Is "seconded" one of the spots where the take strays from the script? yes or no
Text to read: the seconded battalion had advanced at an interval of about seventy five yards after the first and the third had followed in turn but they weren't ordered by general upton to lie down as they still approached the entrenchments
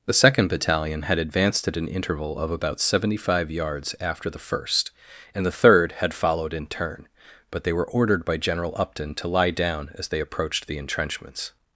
yes